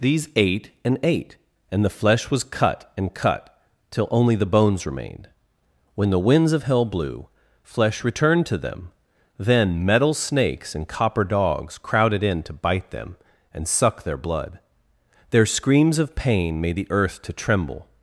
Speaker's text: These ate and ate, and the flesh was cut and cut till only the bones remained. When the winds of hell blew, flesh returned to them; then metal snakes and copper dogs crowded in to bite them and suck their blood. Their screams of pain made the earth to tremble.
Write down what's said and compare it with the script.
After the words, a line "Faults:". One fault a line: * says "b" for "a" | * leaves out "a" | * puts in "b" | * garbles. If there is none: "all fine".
These ate and ate, and the flesh was cut and cut till only the bones remained. When the winds of hell blew, flesh returned to them; then metal snakes and copper dogs crowded in to bite them and suck their blood. Their screams of pain made the earth to tremble.
Faults:
all fine